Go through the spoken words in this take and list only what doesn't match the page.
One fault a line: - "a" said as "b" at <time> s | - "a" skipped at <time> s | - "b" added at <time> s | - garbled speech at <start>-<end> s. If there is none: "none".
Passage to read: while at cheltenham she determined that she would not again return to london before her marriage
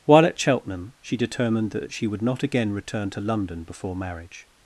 - "her" skipped at 4.0 s